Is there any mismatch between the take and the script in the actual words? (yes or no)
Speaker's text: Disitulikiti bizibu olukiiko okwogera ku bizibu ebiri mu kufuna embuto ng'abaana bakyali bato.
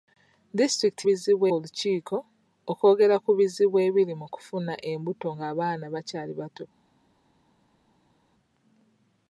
no